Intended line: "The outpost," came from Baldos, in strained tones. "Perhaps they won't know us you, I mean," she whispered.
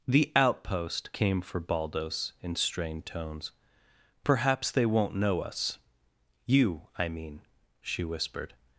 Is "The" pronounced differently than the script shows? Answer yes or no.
no